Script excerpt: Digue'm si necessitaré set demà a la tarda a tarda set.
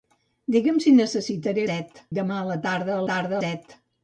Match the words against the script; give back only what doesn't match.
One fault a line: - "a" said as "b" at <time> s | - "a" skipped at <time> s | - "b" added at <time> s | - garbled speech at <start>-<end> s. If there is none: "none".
none